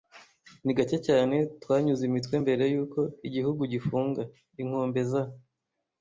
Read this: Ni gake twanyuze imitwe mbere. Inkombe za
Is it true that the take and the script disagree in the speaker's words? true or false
true